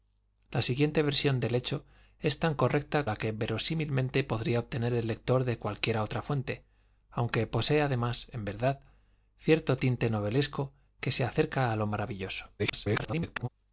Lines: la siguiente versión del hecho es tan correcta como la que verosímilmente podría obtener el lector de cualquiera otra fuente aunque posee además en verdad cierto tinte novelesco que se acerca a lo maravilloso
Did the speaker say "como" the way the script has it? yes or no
no